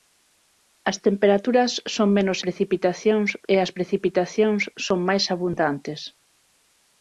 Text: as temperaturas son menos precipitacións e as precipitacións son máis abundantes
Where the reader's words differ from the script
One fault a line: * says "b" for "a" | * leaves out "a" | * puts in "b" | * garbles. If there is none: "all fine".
all fine